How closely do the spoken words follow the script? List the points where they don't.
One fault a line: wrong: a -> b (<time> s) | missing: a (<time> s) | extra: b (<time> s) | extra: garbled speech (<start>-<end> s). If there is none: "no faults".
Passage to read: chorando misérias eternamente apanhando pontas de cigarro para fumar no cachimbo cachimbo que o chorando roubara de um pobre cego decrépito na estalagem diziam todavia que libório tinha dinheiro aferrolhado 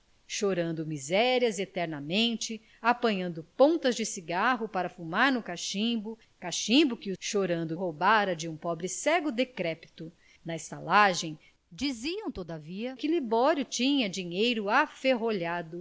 no faults